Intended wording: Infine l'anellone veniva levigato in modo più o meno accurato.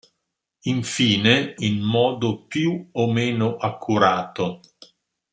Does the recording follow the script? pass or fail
fail